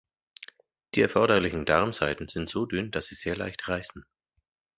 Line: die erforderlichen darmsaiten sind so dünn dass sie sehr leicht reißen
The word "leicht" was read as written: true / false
true